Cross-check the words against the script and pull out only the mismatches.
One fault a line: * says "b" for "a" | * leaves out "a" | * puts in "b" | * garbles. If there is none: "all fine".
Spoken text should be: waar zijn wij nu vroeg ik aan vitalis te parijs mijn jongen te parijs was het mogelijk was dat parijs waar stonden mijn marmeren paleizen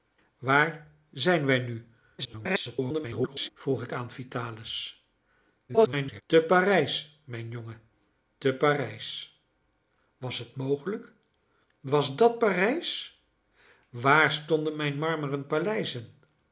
* garbles
* garbles